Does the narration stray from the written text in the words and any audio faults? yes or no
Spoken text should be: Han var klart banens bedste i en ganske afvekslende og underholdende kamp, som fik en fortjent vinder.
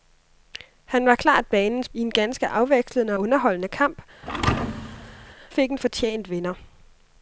yes